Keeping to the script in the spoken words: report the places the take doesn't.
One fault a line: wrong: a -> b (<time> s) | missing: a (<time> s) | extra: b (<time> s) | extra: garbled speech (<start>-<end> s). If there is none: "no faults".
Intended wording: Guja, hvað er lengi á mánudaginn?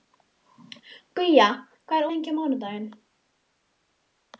no faults